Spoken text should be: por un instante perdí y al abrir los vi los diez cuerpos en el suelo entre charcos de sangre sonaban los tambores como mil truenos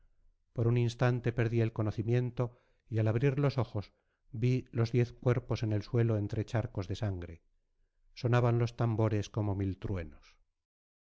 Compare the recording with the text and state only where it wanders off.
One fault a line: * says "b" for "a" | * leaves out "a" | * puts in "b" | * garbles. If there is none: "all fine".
* puts in "el conocimiento"
* puts in "ojos"